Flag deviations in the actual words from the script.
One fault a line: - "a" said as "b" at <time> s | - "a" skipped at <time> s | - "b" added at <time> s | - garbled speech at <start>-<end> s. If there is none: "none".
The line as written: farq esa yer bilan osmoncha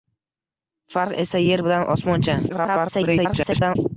- garbled speech at 2.5-3.8 s